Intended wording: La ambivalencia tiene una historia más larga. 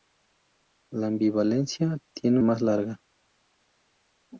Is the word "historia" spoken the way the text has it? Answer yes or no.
no